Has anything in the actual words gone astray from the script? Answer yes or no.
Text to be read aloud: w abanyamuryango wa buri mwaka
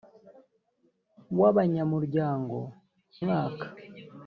yes